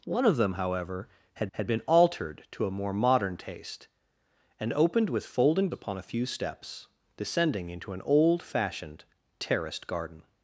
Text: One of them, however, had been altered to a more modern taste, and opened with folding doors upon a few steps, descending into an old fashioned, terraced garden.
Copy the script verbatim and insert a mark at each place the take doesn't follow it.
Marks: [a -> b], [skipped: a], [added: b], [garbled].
One of them, however, had [added: had] been altered to a more modern taste, and opened with folding [skipped: doors] upon a few steps, descending into an old fashioned, terraced garden.